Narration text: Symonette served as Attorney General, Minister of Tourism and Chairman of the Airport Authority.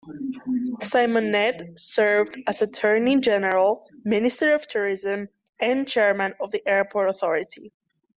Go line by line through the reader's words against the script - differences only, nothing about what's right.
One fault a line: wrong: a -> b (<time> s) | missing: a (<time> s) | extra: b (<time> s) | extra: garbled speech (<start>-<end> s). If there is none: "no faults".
no faults